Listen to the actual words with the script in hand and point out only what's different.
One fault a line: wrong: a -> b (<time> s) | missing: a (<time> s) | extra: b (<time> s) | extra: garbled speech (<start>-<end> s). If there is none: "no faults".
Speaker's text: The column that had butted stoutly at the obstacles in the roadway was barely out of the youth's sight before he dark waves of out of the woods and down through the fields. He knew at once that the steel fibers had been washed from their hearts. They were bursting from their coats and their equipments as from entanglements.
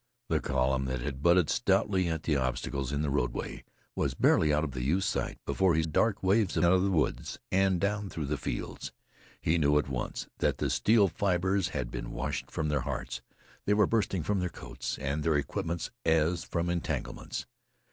no faults